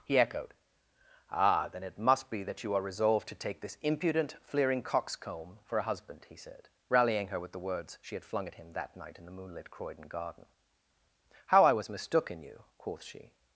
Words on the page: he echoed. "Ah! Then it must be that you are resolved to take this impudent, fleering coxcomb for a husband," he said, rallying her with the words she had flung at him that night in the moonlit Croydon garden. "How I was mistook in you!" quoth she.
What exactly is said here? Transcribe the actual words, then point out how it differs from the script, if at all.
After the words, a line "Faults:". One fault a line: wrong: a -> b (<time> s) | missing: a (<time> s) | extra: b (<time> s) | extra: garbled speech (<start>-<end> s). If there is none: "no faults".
he echoed. "Ah! Then it must be that you are resolved to take this impudent, fleering coxcomb for a husband," he said, rallying her with the words she had flung at him that night in the moonlit Croydon garden. "How I was mistook in you!" quoth she.
Faults:
no faults